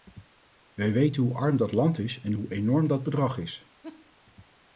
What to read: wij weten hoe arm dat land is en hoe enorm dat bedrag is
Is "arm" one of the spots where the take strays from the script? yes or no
no